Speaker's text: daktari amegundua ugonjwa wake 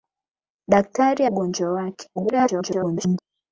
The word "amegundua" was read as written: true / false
false